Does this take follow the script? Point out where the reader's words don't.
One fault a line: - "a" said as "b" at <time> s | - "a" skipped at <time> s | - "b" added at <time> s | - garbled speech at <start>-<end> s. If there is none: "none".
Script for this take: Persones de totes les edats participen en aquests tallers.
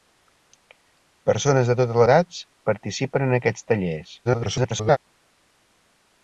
- "les" skipped at 2.0 s
- garbled speech at 4.2-5.0 s